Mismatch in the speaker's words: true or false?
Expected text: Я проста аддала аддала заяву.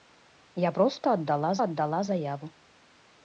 false